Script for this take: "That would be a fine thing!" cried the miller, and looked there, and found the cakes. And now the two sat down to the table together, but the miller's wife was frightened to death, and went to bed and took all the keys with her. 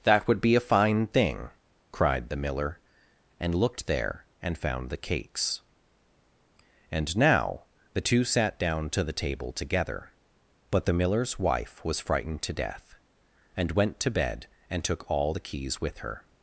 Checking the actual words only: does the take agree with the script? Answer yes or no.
yes